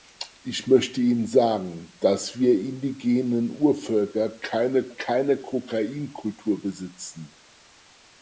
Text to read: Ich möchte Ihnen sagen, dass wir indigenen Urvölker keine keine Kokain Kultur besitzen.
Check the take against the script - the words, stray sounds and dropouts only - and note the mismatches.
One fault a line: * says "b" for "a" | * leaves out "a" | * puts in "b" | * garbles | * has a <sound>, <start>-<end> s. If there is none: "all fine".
all fine